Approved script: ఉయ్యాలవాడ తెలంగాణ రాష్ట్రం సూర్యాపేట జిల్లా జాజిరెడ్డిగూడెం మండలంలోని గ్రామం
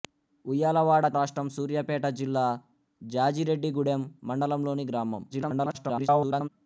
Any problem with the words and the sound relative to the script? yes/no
yes